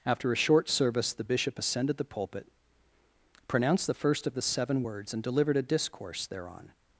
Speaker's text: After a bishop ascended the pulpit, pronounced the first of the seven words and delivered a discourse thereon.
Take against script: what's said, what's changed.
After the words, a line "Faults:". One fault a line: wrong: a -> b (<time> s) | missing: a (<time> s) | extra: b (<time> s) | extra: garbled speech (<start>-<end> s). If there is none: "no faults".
After a short service the bishop ascended the pulpit, pronounced the first of the seven words and delivered a discourse thereon.
Faults:
extra: short service the (0.3 s)